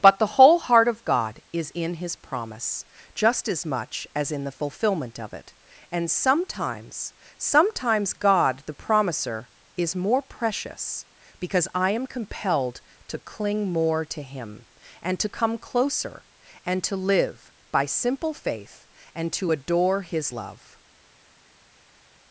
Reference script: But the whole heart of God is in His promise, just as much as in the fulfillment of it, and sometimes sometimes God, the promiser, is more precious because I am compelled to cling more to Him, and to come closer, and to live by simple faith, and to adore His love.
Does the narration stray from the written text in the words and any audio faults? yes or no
no